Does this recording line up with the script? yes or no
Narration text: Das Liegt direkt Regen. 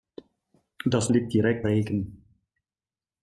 yes